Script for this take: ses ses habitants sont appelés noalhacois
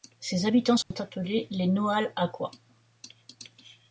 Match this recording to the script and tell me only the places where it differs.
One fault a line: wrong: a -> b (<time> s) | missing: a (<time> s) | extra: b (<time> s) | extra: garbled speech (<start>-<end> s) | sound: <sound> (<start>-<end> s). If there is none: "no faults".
missing: ses (0.5 s)
sound: dropout (0.8-0.9 s)
extra: les (1.5 s)